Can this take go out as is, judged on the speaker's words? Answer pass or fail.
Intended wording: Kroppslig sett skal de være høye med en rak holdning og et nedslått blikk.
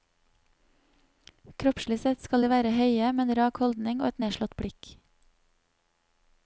pass